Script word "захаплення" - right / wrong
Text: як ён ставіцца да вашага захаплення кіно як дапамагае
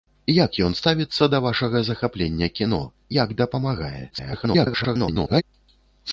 right